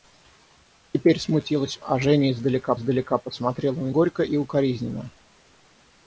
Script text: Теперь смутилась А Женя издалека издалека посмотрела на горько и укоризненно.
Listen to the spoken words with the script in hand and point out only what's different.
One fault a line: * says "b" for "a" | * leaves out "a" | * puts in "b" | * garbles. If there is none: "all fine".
all fine